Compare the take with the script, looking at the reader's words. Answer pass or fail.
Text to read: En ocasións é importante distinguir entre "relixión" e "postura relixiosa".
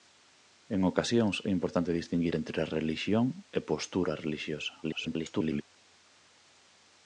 fail